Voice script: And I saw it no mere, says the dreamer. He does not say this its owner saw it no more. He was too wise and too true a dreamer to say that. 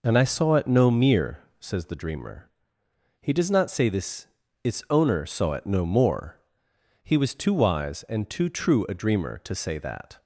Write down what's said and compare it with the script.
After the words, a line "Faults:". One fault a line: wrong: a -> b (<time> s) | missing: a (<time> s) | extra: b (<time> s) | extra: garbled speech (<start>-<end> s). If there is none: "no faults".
And I saw it no mere, says the dreamer. He does not say this its owner saw it no more. He was too wise and too true a dreamer to say that.
Faults:
no faults